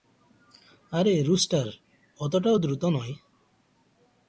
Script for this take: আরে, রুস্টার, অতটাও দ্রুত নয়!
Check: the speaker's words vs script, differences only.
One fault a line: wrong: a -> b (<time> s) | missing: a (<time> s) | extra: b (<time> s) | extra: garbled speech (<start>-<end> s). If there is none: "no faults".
no faults